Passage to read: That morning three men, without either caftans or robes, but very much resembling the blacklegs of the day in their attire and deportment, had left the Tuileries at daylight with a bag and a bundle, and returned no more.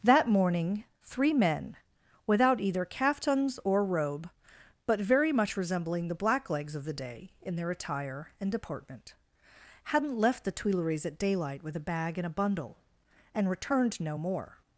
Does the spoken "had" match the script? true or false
false